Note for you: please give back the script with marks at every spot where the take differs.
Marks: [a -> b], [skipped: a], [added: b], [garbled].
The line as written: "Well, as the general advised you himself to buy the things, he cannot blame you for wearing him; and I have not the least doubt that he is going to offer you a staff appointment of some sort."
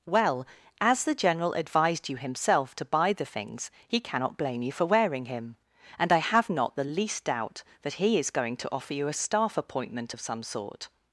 "Well, as the general advised you himself to buy the things, he cannot blame you for wearing him; and I have not the least doubt that he is going to offer you a staff appointment of some sort."